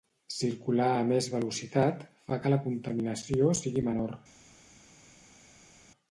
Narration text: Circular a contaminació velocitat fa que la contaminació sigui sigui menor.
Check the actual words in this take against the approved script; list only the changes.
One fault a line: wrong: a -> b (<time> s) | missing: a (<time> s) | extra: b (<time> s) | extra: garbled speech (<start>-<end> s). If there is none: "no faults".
wrong: contaminació -> més (1.1 s)
missing: sigui (3.9 s)